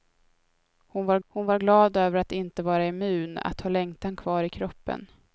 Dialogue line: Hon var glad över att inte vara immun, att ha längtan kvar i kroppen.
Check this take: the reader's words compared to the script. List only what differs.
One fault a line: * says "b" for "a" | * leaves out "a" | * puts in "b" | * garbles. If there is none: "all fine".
* puts in "hon var"